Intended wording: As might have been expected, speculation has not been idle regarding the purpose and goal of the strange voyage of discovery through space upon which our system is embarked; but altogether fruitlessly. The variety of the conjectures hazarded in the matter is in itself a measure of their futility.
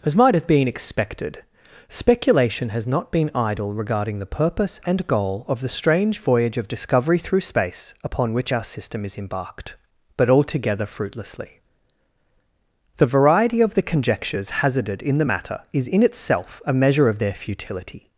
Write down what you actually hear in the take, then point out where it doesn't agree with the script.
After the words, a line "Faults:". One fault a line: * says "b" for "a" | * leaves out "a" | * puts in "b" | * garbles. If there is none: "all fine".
As might have been expected, speculation has not been idle regarding the purpose and goal of the strange voyage of discovery through space upon which our system is embarked; but altogether fruitlessly. The variety of the conjectures hazarded in the matter is in itself a measure of their futility.
Faults:
all fine